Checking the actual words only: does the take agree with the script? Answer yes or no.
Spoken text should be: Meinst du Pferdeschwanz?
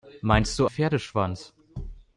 yes